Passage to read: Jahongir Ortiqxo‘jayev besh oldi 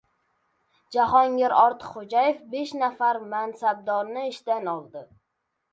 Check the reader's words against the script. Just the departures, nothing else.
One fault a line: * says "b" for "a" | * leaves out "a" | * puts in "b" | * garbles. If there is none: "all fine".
* puts in "nafar mansabdorni ishdan"